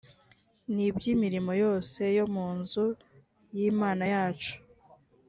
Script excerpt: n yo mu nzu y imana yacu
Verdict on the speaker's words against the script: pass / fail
fail